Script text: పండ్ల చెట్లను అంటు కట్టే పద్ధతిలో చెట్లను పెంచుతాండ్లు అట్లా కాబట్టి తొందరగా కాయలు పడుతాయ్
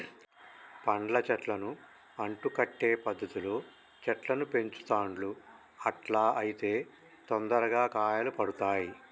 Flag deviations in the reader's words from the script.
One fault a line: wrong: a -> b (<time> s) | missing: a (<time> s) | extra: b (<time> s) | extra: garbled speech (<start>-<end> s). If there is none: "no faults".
wrong: కాబట్టి -> అయితే (6.4 s)